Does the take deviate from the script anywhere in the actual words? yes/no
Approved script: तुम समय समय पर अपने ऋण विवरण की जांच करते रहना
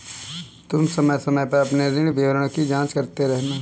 no